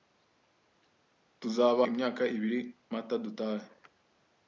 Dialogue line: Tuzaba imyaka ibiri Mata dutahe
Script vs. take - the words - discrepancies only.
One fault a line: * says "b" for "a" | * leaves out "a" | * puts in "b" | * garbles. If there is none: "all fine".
all fine